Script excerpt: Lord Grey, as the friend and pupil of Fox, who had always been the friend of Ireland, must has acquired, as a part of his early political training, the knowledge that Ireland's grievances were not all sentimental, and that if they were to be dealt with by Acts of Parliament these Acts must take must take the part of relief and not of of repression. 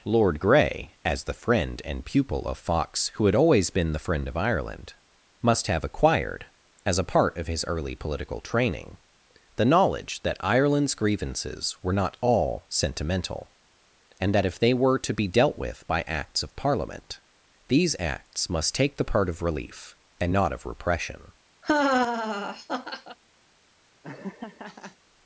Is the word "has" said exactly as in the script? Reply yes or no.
no